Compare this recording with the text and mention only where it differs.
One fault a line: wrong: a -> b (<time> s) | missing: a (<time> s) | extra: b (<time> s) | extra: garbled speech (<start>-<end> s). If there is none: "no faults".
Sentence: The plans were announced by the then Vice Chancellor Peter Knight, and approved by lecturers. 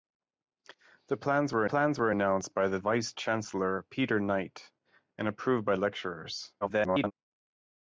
extra: plans were (1.6 s)
missing: then (2.8 s)
extra: garbled speech (6.6-7.1 s)